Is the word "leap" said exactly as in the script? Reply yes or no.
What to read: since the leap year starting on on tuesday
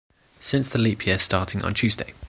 yes